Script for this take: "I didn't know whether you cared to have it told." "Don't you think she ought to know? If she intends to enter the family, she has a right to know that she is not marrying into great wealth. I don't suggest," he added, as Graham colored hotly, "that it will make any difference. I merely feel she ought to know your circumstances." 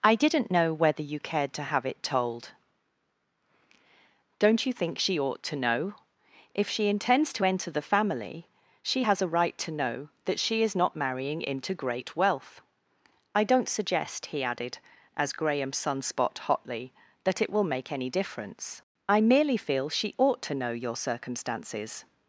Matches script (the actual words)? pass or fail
fail